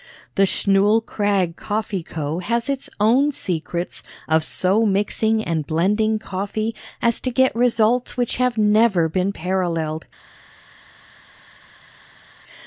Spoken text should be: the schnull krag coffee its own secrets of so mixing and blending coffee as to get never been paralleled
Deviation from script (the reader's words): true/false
true